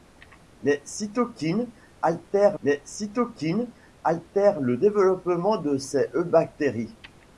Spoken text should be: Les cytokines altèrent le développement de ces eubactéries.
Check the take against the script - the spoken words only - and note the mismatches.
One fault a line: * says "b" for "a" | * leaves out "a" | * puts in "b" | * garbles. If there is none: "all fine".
* puts in "les cytokines altèrent"